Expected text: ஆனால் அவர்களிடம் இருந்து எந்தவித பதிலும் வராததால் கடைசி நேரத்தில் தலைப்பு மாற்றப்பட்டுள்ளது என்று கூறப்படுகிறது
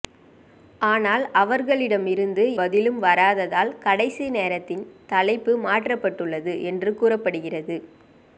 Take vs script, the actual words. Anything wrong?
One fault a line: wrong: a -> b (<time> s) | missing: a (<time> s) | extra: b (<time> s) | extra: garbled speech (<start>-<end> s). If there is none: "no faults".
missing: எந்தவித (2.4 s)